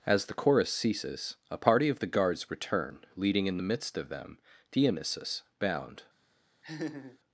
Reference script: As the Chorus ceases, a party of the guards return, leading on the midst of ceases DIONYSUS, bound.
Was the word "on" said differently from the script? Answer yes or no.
yes